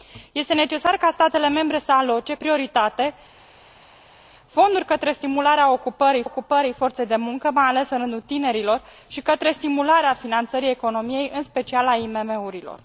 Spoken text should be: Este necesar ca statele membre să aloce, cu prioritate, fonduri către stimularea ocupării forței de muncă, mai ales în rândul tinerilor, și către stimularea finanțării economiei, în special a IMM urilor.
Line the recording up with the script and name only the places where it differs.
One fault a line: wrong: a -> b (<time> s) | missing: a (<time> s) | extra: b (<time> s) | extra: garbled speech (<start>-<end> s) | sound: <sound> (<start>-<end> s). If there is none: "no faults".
missing: cu (2.4 s)
extra: ocupării (6.2 s)